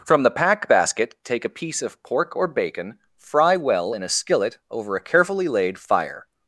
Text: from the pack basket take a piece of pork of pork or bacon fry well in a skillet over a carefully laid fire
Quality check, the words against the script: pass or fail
fail